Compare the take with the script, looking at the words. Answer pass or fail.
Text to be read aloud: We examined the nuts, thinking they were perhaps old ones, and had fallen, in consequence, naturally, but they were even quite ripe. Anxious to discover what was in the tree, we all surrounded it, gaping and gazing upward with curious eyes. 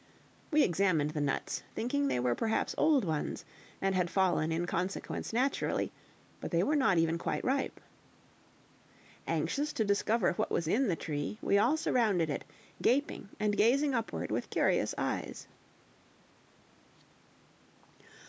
fail